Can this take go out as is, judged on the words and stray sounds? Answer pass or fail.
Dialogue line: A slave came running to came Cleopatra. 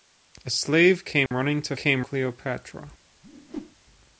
fail